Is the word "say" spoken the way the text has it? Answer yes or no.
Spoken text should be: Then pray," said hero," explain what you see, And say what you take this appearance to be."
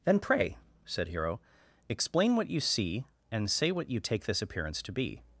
yes